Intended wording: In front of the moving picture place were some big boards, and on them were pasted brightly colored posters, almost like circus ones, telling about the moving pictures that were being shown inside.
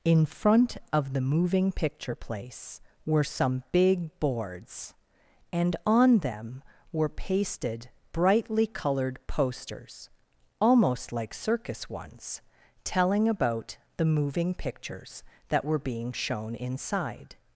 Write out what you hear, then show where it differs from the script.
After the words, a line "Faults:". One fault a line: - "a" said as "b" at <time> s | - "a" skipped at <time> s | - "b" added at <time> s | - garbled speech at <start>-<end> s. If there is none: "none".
In front of the moving picture place were some big boards, and on them were pasted brightly colored posters, almost like circus ones, telling about the moving pictures that were being shown inside.
Faults:
none